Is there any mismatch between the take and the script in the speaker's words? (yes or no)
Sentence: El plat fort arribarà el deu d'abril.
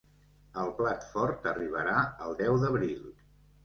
no